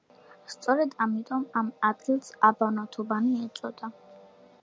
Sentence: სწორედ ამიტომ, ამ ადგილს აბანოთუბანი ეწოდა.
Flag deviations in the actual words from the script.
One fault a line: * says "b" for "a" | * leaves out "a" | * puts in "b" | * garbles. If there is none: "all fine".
all fine